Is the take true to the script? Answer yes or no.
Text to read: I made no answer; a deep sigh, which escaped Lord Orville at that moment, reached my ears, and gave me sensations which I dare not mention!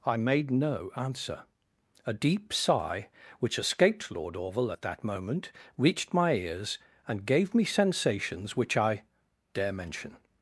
no